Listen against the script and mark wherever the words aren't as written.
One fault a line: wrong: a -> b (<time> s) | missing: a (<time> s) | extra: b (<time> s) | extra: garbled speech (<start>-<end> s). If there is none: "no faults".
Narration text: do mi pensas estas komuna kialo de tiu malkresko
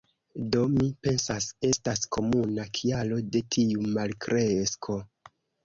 no faults